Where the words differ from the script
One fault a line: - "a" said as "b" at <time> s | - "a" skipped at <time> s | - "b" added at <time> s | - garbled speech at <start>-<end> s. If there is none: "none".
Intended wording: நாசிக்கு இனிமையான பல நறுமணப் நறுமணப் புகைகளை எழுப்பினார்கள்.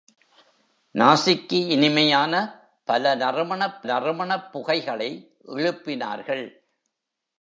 none